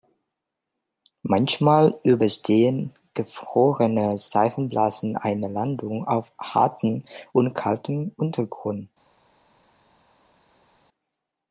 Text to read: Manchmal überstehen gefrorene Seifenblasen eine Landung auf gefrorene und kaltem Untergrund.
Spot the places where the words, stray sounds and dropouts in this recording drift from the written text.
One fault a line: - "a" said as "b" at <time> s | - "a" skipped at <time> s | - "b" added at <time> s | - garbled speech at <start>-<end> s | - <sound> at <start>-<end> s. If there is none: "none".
- "gefrorene" said as "hartem" at 6.4 s